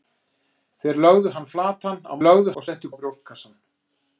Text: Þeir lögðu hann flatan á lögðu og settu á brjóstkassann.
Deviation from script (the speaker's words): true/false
false